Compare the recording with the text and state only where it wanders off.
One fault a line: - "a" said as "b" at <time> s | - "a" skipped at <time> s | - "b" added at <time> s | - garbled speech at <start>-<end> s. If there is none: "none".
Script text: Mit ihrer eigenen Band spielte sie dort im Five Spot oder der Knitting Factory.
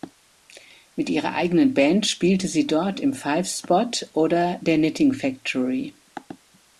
none